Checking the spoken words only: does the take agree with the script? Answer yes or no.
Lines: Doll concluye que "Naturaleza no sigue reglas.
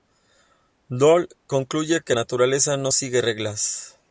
yes